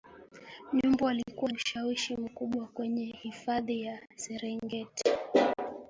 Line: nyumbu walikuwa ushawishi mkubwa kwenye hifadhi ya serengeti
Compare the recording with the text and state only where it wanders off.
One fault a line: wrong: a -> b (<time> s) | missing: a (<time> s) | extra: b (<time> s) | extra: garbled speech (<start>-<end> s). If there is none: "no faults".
no faults